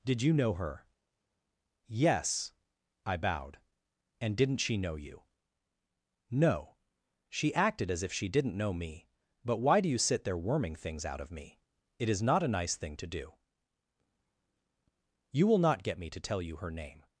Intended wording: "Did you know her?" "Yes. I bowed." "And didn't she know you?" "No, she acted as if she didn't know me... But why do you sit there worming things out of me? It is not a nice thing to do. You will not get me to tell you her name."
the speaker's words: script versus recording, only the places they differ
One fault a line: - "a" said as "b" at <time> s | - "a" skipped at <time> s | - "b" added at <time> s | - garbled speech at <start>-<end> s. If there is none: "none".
none